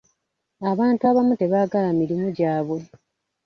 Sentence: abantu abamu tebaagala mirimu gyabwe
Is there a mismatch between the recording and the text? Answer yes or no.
no